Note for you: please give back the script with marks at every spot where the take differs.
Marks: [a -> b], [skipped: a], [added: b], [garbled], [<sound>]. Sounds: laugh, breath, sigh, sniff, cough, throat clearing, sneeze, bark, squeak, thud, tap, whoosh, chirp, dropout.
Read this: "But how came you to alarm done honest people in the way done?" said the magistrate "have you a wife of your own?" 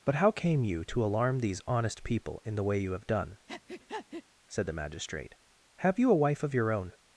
"But how came you to alarm [done -> these] honest people in the way [added: you have] done?" [breath] said the magistrate "have you a wife of your own?"